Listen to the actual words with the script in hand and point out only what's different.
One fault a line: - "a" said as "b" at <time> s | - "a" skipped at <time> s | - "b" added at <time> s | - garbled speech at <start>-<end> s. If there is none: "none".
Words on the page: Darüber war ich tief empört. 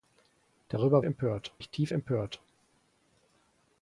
- "war" said as "empört" at 1.0 s